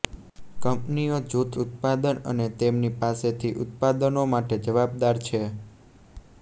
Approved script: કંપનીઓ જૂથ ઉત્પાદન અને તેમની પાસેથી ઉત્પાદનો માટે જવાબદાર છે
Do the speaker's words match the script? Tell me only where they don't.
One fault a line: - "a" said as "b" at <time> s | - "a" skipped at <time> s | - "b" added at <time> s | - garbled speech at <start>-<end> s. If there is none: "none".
none